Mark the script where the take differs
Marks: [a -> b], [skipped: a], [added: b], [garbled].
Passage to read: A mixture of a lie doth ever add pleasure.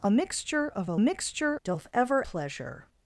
A mixture of a [lie -> mixture] doth ever [skipped: add] pleasure.